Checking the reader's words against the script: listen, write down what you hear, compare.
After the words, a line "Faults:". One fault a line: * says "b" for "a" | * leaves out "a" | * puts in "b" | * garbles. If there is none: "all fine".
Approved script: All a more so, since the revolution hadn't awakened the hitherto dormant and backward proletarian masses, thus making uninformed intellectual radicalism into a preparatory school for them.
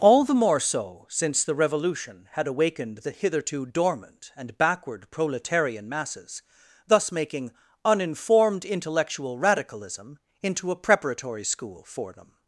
All the more so, since the revolution had awakened the hitherto dormant and backward proletarian masses, thus making uninformed intellectual radicalism into a preparatory school for them.
Faults:
* says "the" for "a"
* says "had" for "hadn't"